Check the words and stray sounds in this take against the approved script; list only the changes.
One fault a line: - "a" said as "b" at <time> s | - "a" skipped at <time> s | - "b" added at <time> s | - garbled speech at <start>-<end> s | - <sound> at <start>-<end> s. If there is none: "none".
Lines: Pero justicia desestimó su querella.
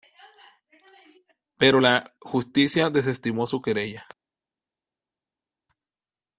- "la" added at 1.8 s